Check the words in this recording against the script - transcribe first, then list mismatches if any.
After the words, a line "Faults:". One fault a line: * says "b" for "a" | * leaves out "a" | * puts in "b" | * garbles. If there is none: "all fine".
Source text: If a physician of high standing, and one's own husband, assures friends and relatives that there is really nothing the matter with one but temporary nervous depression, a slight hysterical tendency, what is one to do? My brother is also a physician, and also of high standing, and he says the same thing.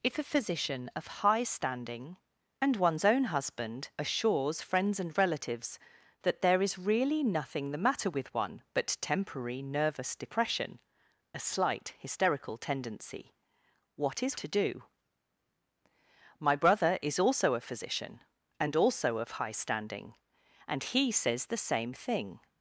If a physician of high standing, and one's own husband, assures friends and relatives that there is really nothing the matter with one but temporary nervous depression, a slight hysterical tendency, what is to do? My brother is also a physician, and also of high standing, and he says the same thing.
Faults:
* leaves out "one"